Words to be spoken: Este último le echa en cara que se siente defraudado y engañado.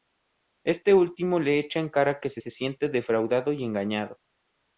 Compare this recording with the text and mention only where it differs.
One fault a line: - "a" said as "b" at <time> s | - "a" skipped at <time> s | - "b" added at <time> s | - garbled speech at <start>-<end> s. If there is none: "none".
- "se" added at 2.4 s